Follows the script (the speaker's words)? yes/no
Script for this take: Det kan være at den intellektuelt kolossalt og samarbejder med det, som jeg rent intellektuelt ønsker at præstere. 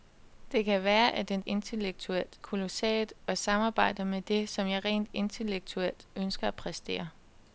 yes